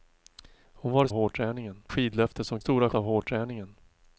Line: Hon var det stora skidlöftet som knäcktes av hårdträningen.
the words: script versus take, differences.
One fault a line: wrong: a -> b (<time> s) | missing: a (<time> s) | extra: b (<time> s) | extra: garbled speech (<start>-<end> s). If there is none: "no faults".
wrong: stora -> hårdträningen (1.1 s)
wrong: knäcktes -> stora (2.6 s)